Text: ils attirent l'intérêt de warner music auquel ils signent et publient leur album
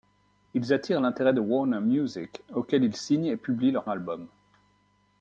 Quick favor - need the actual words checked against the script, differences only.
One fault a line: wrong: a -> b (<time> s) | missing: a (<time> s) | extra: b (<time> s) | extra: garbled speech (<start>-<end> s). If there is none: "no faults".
no faults